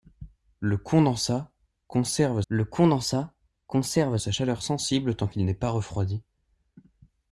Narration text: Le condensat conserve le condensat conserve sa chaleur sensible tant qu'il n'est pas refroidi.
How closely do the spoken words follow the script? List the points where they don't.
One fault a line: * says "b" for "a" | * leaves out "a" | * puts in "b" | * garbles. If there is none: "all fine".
all fine